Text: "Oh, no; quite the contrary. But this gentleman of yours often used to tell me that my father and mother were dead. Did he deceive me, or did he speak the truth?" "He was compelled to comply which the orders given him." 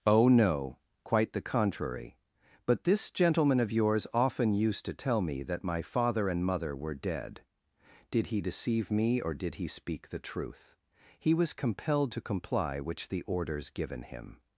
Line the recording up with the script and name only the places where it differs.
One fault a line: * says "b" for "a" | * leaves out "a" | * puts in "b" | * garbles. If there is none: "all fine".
all fine